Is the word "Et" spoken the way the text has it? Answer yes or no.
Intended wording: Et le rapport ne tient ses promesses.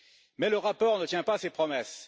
no